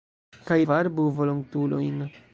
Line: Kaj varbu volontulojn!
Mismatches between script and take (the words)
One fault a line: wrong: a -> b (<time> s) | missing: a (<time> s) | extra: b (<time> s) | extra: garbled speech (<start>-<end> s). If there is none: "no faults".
no faults